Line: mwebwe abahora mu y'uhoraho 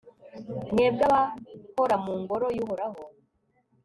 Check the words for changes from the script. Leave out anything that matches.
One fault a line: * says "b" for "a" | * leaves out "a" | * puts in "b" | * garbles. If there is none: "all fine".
* puts in "ngoro"